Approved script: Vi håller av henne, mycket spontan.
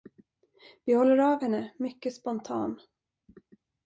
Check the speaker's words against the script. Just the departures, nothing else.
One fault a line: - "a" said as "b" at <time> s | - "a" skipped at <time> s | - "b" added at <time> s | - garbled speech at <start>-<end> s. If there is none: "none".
none